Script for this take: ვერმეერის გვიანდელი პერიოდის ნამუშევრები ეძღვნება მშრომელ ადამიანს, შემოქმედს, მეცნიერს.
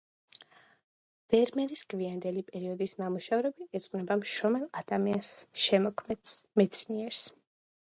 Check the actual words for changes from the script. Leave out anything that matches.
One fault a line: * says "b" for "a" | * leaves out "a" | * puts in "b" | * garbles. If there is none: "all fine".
all fine